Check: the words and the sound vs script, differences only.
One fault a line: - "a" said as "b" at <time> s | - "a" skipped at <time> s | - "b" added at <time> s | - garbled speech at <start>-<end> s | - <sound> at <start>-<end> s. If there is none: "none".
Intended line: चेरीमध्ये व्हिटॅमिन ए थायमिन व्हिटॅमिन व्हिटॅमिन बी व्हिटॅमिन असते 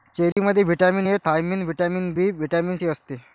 - dropout at 0.3-0.4 s
- "व्हिटॅमिन" skipped at 2.1 s
- "सी" added at 2.7 s